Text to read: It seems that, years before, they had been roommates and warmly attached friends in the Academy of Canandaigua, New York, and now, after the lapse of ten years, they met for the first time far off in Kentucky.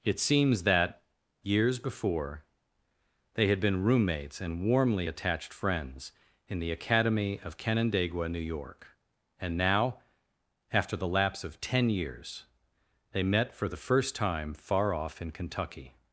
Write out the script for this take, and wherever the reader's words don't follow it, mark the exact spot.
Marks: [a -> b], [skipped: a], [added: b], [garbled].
It seems that, years before, they had been roommates and warmly attached friends in the Academy of Canandaigua, New York, and now, after the lapse of ten years, they met for the first time far off in Kentucky.